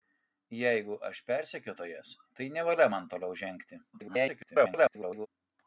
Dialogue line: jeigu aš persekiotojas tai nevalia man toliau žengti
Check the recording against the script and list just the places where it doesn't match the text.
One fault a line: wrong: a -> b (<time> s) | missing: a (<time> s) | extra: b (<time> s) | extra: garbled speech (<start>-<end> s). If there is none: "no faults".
extra: garbled speech (3.9-5.3 s)